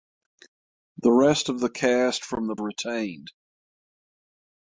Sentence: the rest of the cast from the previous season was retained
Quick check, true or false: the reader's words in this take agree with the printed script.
false